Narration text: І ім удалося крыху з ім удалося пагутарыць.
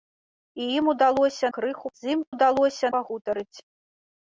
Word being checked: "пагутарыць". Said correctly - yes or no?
yes